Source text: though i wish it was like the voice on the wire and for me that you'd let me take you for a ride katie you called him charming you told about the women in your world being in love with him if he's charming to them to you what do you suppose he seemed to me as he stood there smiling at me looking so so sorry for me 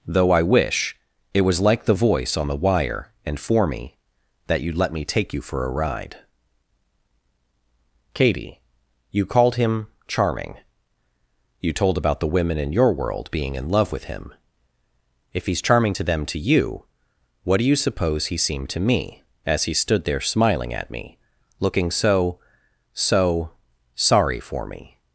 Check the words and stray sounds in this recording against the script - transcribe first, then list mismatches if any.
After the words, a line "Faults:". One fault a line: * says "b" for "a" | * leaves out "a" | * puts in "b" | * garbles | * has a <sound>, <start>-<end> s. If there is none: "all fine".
though i wish it was like the voice on the wire and for me that you'd let me take you for a ride katie you called him charming you told about the women in your world being in love with him if he's charming to them to you what do you suppose he seemed to me as he stood there smiling at me looking so so sorry for me
Faults:
all fine